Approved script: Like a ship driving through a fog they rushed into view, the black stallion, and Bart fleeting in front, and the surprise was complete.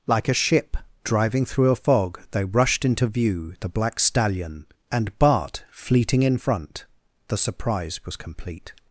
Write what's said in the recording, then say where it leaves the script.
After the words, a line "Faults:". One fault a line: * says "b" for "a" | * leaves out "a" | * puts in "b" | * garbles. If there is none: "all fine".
Like a ship driving through a fog they rushed into view, the black stallion, and Bart fleeting in front, the surprise was complete.
Faults:
* leaves out "and"